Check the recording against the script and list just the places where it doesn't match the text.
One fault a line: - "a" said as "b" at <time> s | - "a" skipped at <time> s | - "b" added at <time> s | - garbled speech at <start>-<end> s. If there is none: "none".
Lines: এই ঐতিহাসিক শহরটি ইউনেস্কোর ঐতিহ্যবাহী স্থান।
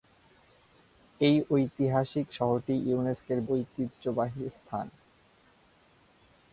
none